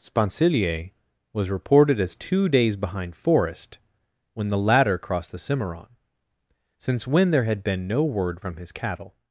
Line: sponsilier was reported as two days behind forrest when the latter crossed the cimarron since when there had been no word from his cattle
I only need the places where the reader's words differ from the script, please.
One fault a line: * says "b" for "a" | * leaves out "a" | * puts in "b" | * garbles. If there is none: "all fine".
all fine